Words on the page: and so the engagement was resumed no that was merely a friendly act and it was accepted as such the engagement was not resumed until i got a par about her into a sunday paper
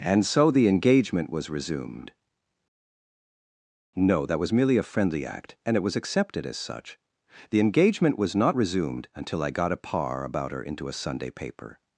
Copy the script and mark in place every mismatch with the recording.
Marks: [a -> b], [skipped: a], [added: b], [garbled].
and so the engagement was resumed no that was merely a friendly act and it was accepted as such the engagement was not resumed until i got a par about her into a sunday paper